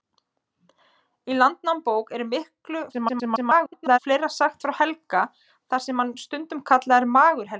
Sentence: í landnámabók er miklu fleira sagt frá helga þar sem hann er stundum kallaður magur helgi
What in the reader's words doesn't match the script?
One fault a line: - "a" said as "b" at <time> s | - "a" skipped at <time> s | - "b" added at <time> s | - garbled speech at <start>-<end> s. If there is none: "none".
- garbled speech at 2.9-4.0 s